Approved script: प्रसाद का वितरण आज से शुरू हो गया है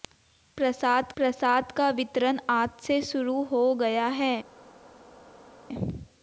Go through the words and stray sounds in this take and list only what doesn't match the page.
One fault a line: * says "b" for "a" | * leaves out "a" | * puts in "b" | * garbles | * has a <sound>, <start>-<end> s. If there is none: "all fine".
* puts in "प्रसाद"